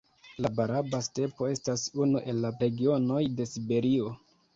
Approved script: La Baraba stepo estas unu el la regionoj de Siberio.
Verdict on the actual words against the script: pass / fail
pass